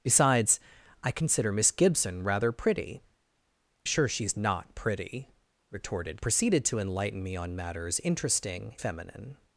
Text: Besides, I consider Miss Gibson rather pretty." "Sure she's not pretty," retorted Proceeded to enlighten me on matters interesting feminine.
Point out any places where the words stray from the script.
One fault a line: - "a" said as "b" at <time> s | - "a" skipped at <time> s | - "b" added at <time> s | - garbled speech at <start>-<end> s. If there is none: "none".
none